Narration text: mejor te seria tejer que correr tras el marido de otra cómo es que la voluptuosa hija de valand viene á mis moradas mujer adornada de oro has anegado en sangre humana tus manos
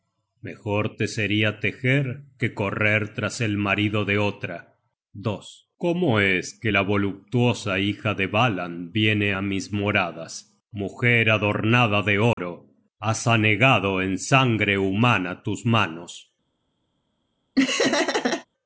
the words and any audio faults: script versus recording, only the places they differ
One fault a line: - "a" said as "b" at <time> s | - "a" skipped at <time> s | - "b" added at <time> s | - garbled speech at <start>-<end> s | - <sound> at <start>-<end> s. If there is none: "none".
- dropout at 12.3-12.4 s
- laugh at 17.6-18.5 s